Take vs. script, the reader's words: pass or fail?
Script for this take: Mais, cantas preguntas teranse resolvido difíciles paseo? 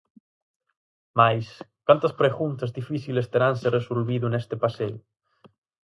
fail